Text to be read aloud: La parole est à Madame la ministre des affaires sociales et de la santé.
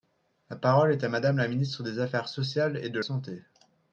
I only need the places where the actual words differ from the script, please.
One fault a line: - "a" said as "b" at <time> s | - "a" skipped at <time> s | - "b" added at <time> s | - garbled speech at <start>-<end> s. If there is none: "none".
- "la" skipped at 3.0 s